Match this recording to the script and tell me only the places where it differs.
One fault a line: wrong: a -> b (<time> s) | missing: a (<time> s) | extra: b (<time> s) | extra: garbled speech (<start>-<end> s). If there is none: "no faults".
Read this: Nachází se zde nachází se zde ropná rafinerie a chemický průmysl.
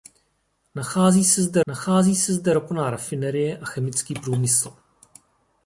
no faults